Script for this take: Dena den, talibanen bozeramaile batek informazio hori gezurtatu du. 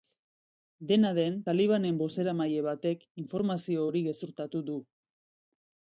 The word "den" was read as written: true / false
true